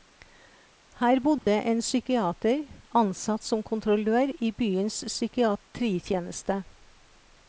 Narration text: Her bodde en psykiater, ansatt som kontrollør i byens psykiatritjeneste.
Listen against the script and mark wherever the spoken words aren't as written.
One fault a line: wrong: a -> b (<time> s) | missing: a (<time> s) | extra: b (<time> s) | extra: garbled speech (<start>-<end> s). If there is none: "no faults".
no faults